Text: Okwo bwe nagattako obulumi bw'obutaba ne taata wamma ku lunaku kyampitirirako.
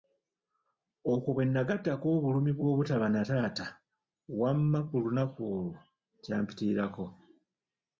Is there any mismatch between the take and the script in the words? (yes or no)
yes